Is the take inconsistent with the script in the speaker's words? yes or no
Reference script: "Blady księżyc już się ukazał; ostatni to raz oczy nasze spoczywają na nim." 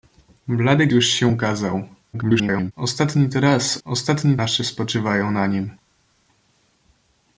yes